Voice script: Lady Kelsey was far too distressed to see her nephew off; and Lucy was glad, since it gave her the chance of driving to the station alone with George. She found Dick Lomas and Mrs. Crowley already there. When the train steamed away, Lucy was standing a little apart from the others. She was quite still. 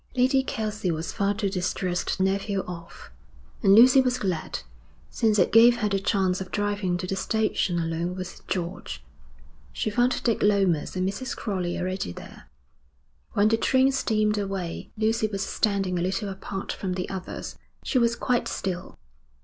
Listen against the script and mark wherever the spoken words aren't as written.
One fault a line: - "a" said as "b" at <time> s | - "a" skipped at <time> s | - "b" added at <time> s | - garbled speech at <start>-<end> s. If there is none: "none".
- "to see her" skipped at 2.2 s